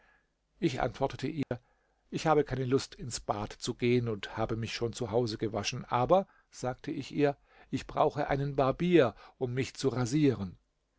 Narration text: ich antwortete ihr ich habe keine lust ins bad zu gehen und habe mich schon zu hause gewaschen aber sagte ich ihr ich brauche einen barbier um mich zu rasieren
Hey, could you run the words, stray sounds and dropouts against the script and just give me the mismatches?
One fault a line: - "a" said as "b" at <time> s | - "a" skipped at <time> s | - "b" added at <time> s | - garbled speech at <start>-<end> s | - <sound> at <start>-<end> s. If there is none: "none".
- dropout at 1.4-1.5 s